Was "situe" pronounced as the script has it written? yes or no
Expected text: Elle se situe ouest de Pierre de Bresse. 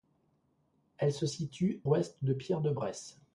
yes